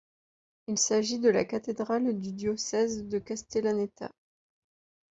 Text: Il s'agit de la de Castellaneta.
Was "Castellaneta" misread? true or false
false